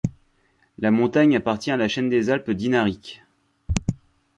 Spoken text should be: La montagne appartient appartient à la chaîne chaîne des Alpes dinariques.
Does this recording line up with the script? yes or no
no